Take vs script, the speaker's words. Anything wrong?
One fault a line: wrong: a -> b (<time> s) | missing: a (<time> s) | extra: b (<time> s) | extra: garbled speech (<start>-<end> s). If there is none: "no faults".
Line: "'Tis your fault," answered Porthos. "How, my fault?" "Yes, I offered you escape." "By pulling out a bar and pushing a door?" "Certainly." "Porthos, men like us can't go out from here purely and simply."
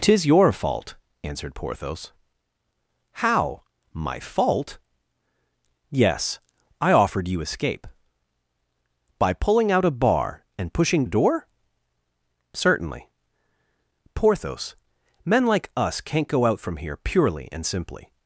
no faults